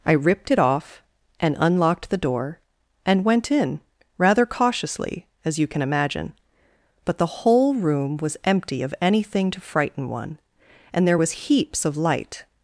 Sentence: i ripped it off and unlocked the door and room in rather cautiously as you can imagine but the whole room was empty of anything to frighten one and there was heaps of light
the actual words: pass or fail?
fail